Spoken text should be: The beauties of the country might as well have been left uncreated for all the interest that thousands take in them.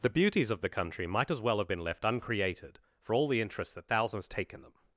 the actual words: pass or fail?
pass